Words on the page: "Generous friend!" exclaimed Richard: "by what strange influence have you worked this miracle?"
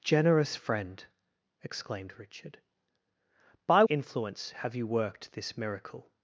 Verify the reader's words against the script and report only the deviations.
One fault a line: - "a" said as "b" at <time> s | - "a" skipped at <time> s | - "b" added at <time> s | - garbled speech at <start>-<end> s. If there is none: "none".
- "what strange" skipped at 3.8 s